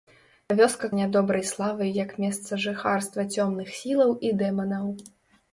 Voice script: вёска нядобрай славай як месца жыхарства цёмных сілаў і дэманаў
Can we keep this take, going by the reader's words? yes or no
yes